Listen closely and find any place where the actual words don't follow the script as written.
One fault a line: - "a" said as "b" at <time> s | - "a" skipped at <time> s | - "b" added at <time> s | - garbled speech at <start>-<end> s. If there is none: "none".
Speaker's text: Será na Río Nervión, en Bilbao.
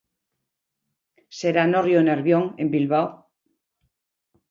- "na" said as "no" at 1.7 s